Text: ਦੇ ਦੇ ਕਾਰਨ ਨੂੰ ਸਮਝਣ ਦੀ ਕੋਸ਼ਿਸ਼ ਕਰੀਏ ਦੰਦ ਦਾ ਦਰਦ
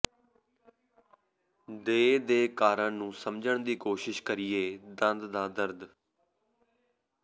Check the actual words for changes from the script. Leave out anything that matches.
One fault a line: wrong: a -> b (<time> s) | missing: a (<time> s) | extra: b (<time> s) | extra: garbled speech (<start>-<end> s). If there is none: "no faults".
no faults